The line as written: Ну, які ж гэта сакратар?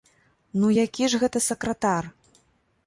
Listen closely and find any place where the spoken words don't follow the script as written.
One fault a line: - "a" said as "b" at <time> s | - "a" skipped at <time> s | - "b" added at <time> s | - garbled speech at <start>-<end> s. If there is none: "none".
none